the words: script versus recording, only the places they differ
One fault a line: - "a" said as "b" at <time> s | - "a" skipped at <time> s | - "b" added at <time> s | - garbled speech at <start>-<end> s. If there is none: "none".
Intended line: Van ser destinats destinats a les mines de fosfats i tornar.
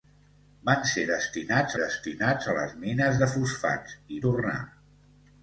none